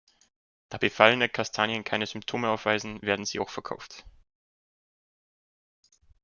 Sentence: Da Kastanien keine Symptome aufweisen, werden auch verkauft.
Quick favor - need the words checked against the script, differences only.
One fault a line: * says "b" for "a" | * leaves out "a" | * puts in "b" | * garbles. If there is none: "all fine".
* puts in "befallene"
* puts in "sie"